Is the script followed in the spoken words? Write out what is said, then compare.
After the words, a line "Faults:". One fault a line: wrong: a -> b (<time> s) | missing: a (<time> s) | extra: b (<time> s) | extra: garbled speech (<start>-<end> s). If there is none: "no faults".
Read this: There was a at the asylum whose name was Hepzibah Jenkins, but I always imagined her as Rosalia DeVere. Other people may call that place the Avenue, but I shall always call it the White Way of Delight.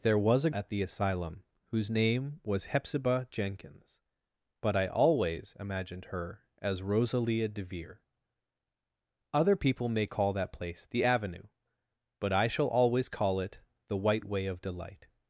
There was a at the asylum whose name was Hepzibah Jenkins, but I always imagined her as Rosalia DeVere. Other people may call that place the Avenue, but I shall always call it the White Way of Delight.
Faults:
no faults